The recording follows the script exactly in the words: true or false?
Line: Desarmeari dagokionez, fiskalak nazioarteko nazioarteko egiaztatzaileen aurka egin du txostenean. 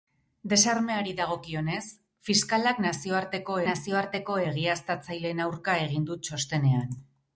true